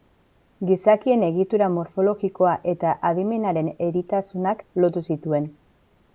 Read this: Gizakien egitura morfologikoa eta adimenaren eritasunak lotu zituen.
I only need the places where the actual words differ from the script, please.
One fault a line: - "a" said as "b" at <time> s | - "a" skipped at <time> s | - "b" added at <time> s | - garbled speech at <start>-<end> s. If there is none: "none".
none